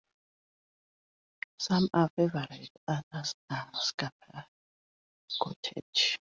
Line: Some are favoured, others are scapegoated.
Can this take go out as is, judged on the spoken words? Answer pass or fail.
pass